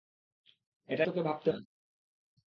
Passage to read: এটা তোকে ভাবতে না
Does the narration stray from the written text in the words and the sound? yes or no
no